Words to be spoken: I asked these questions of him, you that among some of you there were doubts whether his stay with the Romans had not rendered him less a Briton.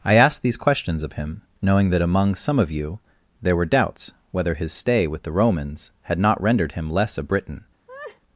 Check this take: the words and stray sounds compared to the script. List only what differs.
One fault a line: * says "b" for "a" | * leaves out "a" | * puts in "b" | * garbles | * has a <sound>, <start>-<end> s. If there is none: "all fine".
* says "knowing" for "you"
* has a laugh, 7.9-8.2 s